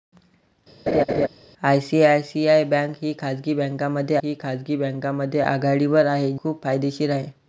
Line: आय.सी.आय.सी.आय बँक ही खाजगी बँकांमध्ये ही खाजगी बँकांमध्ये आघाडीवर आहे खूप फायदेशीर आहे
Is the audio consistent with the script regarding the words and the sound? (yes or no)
no